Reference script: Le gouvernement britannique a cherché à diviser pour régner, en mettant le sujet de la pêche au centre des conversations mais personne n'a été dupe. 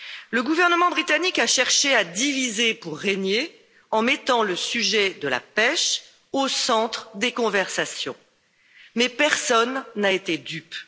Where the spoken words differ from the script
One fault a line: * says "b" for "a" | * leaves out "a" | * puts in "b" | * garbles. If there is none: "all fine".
all fine